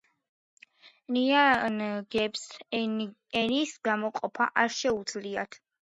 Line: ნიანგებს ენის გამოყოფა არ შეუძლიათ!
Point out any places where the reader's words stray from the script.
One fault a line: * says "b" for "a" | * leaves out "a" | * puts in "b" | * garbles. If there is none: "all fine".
all fine